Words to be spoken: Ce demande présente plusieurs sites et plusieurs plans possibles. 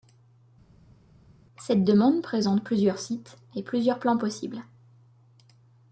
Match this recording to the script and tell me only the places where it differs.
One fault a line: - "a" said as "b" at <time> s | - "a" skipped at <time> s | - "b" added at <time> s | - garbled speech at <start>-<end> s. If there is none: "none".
- "Ce" said as "Cette" at 1.6 s